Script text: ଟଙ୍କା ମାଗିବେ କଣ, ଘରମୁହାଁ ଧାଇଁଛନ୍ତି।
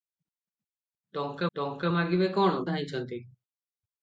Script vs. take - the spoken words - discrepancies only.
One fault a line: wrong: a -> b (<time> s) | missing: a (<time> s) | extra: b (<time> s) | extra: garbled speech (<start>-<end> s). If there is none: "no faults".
extra: ଟଙ୍କା (1.5 s)
missing: ଘରମୁହାଁ (2.6 s)